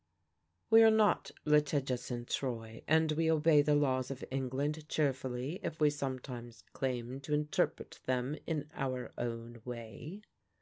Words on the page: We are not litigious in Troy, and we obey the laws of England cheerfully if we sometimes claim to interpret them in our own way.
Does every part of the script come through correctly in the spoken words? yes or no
yes